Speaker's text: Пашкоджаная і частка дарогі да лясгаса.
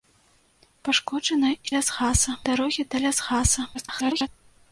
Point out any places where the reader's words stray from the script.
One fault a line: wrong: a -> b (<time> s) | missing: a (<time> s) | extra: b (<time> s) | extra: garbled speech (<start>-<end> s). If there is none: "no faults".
wrong: частка -> лясгаса (1.7 s)
extra: garbled speech (3.7-4.3 s)